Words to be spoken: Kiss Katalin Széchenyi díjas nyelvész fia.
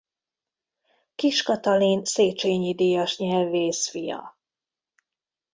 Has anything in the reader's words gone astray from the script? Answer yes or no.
no